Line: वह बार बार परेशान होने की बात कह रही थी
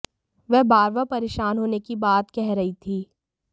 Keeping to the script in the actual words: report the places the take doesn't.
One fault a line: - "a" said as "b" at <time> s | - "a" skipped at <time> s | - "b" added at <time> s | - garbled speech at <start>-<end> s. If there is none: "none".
none